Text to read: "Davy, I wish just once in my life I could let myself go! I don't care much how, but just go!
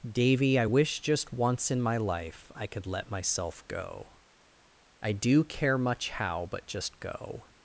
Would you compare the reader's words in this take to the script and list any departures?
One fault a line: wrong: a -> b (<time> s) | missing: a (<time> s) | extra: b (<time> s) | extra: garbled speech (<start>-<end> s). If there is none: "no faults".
wrong: don't -> do (5.1 s)